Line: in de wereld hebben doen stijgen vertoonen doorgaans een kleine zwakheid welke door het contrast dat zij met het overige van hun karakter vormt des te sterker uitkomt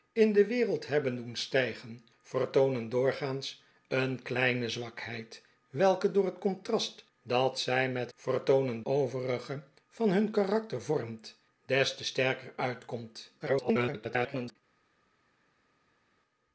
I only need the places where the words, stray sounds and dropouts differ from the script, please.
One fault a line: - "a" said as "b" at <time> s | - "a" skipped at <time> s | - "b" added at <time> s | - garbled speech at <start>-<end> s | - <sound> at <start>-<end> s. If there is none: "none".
- "het" said as "vertoonen" at 8.1 s
- garbled speech at 13.4-14.6 s